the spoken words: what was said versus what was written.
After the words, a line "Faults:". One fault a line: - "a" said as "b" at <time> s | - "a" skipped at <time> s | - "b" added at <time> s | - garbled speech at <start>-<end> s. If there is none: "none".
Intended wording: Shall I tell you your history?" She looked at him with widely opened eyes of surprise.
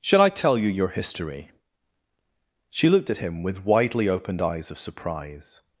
Shall I tell you your history?" She looked at him with widely opened eyes of surprise.
Faults:
none